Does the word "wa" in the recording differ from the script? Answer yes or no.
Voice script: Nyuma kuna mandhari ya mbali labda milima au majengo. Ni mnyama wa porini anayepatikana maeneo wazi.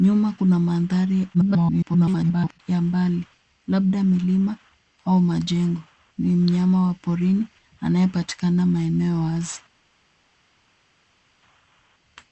no